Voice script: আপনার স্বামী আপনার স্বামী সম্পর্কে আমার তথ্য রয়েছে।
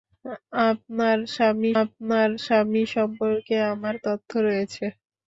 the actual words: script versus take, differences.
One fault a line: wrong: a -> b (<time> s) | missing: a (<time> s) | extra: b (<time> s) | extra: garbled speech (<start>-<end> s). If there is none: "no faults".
no faults